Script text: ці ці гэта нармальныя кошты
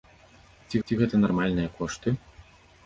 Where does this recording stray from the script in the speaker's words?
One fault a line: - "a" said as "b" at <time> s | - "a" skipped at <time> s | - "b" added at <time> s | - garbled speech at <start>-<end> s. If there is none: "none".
none